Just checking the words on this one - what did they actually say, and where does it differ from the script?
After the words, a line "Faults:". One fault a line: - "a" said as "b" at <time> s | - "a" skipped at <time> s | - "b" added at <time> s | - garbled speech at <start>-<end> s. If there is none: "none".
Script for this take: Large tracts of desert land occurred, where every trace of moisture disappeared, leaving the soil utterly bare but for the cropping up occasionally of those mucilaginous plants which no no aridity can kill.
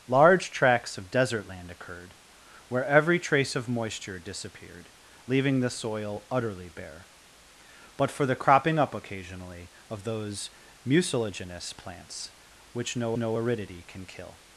Large tracts of desert land occurred, where every trace of moisture disappeared, leaving the soil utterly bare but for the cropping up occasionally of those mucilaginous plants which no no aridity can kill.
Faults:
none